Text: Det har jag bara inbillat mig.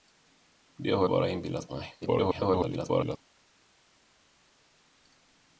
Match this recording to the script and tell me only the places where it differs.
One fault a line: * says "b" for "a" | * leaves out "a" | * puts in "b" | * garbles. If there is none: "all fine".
* leaves out "jag"
* garbles